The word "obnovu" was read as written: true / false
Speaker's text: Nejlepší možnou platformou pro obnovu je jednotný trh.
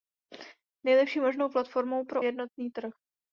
false